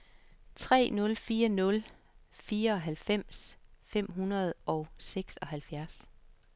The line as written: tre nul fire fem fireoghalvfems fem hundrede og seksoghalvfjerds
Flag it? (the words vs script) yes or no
yes